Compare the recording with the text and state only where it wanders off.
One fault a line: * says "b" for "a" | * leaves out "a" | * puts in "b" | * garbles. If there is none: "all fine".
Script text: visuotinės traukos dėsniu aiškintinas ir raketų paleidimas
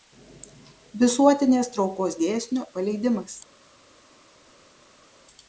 * leaves out "aiškintinas ir raketų"